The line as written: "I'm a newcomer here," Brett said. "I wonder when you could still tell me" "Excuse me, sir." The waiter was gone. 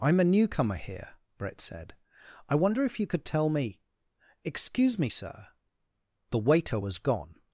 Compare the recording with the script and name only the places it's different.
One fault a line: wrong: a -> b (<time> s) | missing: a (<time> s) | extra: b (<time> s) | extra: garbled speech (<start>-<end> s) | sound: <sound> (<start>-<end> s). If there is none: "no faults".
wrong: when -> if (2.8 s)
missing: still (3.3 s)